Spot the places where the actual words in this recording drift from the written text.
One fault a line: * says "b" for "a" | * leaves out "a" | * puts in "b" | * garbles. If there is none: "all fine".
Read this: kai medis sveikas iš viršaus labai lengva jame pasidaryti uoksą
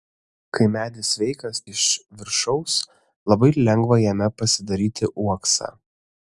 all fine